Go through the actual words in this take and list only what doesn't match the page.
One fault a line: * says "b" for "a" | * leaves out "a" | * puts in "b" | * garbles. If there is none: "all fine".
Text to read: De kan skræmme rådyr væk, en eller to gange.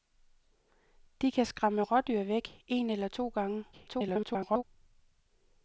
* garbles